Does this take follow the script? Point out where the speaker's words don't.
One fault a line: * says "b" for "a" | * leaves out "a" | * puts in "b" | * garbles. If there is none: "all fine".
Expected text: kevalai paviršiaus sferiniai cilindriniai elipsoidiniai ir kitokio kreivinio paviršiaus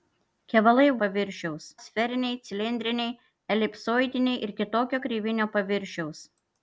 all fine